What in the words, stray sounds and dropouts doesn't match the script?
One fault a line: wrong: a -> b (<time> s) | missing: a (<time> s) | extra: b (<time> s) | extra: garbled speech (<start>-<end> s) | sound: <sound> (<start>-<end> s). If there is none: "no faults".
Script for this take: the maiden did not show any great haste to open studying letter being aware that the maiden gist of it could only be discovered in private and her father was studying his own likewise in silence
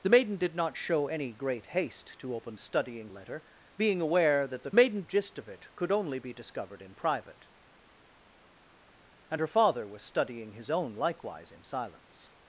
no faults